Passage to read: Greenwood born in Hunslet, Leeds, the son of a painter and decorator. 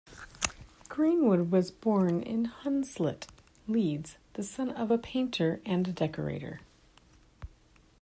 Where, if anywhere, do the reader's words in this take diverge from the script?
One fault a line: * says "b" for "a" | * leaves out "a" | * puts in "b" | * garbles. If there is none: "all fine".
* puts in "was"